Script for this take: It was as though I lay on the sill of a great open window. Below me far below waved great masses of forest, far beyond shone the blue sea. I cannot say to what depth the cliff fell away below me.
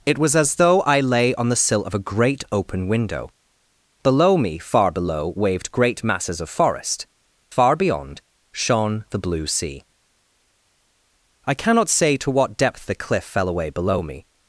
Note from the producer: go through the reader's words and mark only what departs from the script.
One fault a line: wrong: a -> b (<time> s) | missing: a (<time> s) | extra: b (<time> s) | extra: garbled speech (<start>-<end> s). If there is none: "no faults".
no faults